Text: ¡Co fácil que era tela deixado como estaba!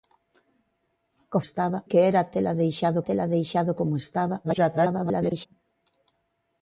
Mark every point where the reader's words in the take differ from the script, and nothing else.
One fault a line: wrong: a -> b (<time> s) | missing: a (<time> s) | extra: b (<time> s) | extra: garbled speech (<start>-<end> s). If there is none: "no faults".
wrong: fácil -> estaba (1.4 s)
extra: tela deixado (3.0 s)
extra: garbled speech (4.4-5.5 s)